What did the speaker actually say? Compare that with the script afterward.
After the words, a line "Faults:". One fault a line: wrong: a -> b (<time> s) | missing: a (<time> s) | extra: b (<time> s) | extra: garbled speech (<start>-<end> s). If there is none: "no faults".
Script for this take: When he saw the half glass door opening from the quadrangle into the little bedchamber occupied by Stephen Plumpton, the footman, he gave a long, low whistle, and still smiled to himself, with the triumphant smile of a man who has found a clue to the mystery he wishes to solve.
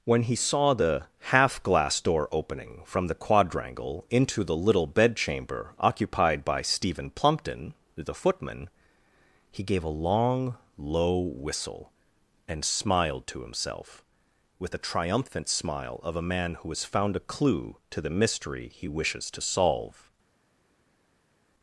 When he saw the half glass door opening from the quadrangle into the little bedchamber occupied by Stephen Plumpton, the footman, he gave a long, low whistle, and smiled to himself, with the triumphant smile of a man who has found a clue to the mystery he wishes to solve.
Faults:
missing: still (12.7 s)